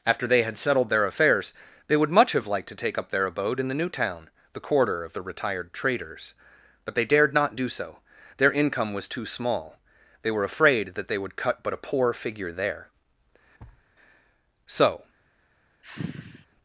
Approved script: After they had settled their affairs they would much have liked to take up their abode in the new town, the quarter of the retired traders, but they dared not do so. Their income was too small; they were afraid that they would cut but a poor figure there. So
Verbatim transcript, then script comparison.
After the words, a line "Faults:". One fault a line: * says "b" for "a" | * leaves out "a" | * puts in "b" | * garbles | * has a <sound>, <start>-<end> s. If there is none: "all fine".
After they had settled their affairs they would much have liked to take up their abode in the new town, the quarter of the retired traders, but they dared not do so. Their income was too small; they were afraid that they would cut but a poor figure there. So
Faults:
* has a thud, 13.6-13.9 s
* has a sigh, 15.8-16.5 s